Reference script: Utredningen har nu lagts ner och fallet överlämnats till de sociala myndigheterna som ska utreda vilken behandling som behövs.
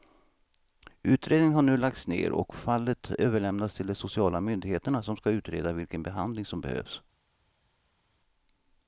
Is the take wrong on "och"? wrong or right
right